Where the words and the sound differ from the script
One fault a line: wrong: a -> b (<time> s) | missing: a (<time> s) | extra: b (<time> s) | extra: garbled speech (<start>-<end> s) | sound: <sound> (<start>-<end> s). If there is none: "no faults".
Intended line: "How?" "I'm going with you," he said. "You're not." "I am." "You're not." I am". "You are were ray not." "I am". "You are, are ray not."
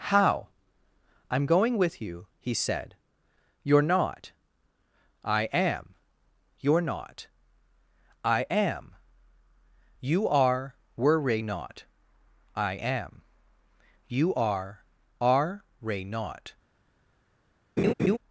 sound: laugh (17.8-18.2 s)